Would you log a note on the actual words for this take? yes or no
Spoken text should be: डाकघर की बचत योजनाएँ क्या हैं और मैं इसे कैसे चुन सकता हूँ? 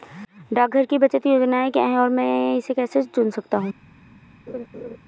no